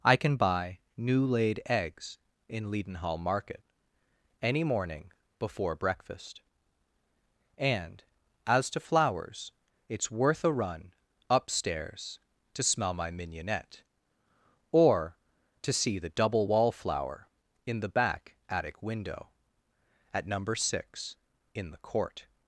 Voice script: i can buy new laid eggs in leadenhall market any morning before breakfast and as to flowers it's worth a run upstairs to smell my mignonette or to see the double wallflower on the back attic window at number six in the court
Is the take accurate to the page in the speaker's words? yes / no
no